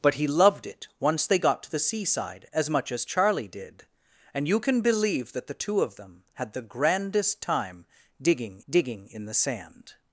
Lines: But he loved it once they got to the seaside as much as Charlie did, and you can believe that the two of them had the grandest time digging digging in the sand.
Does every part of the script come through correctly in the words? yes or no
yes